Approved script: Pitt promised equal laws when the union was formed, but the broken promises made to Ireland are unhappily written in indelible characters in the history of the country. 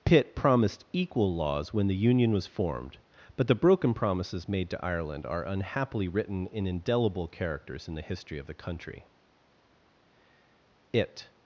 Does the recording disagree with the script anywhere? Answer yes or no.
yes